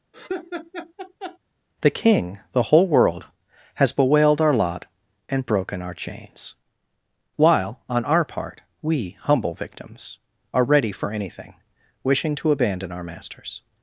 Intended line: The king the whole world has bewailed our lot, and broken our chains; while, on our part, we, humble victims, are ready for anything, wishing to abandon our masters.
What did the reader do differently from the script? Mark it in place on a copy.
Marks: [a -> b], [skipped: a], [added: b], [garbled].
The king the whole world has bewailed our lot, and broken our chains; while, on our part, we, humble victims, are ready for anything, wishing to abandon our masters.